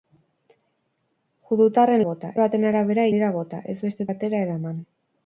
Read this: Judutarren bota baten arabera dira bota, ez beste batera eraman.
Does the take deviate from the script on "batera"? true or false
false